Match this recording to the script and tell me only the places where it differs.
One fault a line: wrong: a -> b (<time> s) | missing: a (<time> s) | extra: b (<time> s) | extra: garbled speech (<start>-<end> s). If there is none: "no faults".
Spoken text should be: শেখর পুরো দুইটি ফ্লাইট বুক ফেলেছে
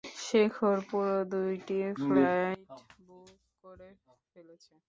extra: করে (3.6 s)